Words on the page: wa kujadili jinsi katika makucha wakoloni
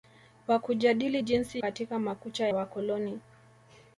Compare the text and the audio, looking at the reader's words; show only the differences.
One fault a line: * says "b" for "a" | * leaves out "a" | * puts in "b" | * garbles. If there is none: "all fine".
all fine